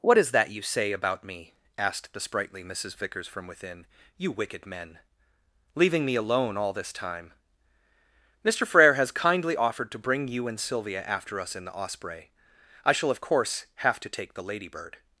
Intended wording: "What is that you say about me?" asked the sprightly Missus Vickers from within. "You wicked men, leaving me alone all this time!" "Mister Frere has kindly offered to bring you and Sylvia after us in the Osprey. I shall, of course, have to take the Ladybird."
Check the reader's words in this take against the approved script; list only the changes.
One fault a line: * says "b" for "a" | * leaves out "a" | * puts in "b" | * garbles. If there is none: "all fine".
all fine